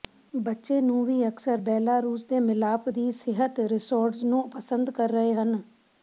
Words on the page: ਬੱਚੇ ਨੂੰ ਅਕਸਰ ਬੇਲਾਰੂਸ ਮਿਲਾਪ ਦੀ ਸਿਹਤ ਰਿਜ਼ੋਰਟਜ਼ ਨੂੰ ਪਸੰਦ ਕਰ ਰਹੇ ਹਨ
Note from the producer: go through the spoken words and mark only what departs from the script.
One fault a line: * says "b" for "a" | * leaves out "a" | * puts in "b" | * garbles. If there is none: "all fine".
* puts in "ਵੀ"
* puts in "ਦੇ"